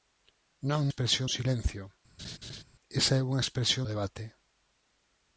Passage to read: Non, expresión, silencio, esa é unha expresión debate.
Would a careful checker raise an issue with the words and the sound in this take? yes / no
yes